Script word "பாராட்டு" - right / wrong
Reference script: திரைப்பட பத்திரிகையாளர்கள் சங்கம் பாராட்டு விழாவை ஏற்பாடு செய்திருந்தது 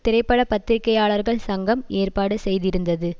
wrong